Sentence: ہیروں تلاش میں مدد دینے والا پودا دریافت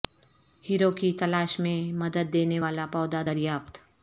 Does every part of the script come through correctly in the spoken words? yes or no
no